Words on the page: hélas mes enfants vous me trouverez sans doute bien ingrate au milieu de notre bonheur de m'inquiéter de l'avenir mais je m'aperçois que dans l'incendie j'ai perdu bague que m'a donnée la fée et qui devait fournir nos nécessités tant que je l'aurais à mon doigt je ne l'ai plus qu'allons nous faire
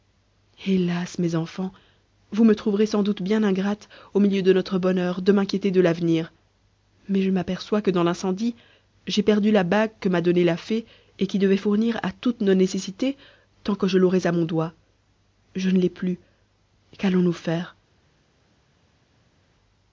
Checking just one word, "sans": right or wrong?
right